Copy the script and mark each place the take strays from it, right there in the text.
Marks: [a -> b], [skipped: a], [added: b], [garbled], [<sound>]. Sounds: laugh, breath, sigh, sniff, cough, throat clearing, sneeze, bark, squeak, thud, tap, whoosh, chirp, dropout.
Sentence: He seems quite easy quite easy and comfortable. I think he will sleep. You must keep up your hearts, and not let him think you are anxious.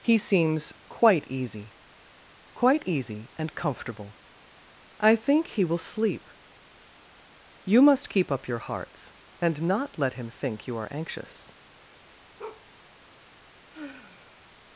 He seems quite easy quite easy and comfortable. I think he will sleep. You must keep up your hearts, and not let him think you are anxious. [bark] [sigh]